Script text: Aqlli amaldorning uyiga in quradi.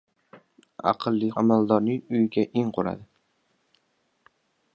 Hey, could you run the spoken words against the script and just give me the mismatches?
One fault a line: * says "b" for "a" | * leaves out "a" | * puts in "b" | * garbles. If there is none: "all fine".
all fine